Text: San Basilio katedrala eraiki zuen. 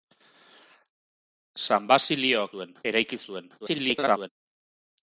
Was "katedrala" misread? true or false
true